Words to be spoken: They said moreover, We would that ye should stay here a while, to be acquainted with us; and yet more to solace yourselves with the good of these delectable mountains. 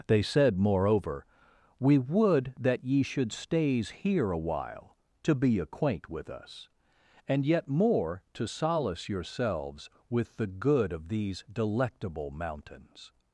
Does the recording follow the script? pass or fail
fail